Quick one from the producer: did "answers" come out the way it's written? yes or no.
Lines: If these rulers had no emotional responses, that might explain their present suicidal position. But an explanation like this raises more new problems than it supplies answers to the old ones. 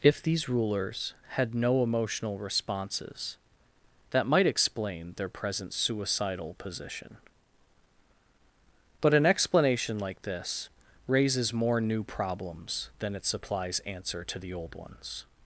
no